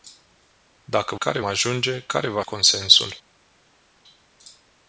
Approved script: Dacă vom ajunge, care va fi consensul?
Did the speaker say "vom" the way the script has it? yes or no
no